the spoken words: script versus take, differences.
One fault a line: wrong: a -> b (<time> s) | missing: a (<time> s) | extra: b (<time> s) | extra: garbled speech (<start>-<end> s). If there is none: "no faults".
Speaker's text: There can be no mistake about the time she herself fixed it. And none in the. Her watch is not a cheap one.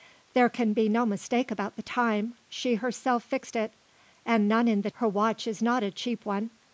no faults